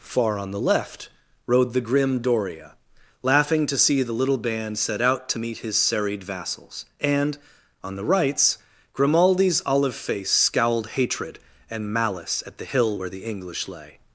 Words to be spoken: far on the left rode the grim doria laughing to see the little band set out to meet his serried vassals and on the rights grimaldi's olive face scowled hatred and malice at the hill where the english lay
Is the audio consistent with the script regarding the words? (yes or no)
yes